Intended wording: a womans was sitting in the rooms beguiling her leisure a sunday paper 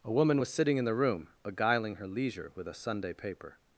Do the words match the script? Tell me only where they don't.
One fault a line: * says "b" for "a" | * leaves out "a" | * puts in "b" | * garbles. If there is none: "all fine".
* says "woman" for "womans"
* says "room" for "rooms"
* puts in "with"